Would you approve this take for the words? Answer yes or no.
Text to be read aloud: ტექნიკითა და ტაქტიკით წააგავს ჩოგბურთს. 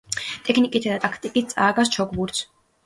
yes